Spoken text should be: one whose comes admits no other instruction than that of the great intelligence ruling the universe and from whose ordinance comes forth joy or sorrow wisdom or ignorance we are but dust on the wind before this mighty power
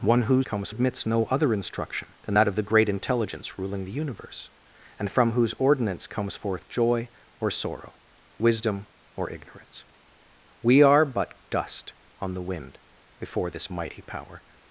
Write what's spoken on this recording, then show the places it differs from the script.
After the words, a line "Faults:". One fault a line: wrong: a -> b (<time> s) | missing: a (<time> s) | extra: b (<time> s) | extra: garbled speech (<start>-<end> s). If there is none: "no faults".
one whose comes admits no other instruction than that of the great intelligence ruling the universe and from whose ordinance comes forth joy or sorrow wisdom or ignorance we are but dust on the wind before this mighty power
Faults:
no faults